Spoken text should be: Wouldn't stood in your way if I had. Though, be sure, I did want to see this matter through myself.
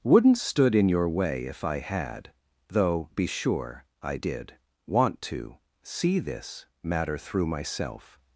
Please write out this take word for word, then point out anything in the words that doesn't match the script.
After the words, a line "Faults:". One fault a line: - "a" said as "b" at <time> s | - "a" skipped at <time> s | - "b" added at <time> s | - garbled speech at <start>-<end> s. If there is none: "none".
Wouldn't stood in your way if I had. Though, be sure, I did want to see this matter through myself.
Faults:
none